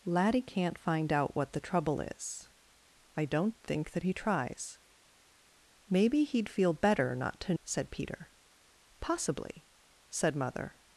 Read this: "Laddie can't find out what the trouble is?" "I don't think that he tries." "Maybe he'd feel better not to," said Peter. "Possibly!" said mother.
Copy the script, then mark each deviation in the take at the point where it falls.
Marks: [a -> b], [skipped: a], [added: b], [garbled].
"Laddie can't find out what the trouble is?" "I don't think that he tries." "Maybe he'd feel better not to," said Peter. "Possibly!" said mother.